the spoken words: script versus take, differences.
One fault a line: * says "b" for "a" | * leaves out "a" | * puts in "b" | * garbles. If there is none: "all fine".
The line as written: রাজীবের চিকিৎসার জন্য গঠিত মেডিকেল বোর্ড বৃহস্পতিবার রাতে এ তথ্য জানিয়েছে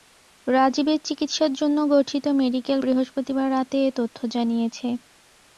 * leaves out "বোর্ড"